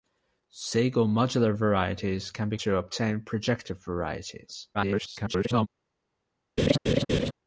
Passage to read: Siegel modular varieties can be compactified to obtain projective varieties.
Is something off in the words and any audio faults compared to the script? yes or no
yes